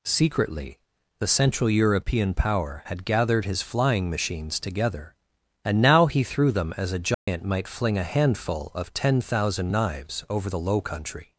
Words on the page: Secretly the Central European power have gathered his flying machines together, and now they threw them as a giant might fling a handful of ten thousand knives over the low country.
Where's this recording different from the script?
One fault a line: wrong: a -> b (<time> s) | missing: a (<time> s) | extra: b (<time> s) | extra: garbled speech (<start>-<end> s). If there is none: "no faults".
wrong: have -> had (2.9 s)
wrong: they -> he (6.1 s)